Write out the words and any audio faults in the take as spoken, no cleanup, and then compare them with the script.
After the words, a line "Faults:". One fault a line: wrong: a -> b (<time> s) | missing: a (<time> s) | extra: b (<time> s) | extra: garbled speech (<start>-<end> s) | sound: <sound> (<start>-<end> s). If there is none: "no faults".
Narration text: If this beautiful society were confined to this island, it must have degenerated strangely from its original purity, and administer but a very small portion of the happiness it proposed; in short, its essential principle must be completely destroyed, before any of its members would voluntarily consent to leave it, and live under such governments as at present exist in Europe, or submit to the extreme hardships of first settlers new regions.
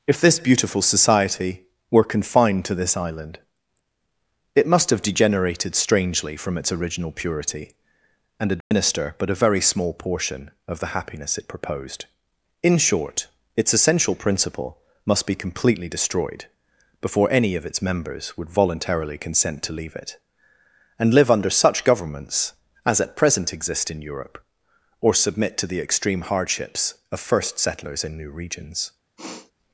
If this beautiful society were confined to this island, it must have degenerated strangely from its original purity, and administer but a very small portion of the happiness it proposed; in short, its essential principle must be completely destroyed, before any of its members would voluntarily consent to leave it, and live under such governments as at present exist in Europe, or submit to the extreme hardships of first settlers in new regions.
Faults:
sound: dropout (8.6-8.7 s)
extra: in (28.0 s)
sound: sniff (29.2-29.5 s)